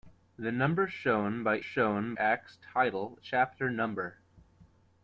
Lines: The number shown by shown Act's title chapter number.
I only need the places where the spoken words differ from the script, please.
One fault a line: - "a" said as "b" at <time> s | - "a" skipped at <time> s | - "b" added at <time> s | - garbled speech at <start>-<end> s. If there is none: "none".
none